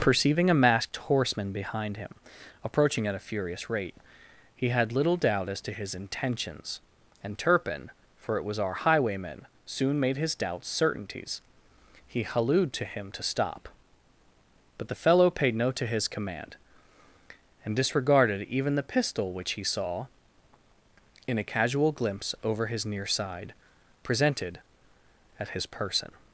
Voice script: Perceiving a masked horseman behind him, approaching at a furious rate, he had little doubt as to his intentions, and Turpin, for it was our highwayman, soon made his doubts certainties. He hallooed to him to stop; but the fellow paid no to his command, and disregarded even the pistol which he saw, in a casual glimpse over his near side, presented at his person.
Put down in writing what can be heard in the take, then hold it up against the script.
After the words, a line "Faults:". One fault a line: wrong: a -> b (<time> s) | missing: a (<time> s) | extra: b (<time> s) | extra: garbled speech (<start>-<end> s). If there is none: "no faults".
Perceiving a masked horseman behind him, approaching at a furious rate, he had little doubt as to his intentions, and Turpin, for it was our highwayman, soon made his doubts certainties. He hallooed to him to stop; but the fellow paid no to his command, and disregarded even the pistol which he saw, in a casual glimpse over his near side, presented at his person.
Faults:
no faults